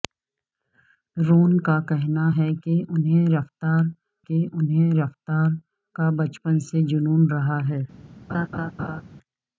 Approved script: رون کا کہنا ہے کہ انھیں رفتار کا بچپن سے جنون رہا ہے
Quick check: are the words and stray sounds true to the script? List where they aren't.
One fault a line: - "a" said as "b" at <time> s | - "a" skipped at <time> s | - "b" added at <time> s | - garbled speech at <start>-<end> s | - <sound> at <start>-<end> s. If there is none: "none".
- "کہ انھیں رفتار" added at 4.3 s
- laugh at 8.3-9.0 s